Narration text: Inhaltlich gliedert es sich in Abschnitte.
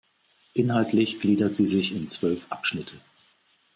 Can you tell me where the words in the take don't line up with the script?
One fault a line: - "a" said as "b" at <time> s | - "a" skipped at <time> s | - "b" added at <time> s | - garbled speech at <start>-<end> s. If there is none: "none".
- "es" said as "sie" at 1.5 s
- "zwölf" added at 2.1 s